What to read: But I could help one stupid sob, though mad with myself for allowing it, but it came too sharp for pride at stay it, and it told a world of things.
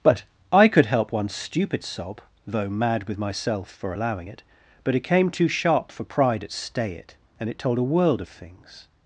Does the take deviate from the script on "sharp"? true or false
false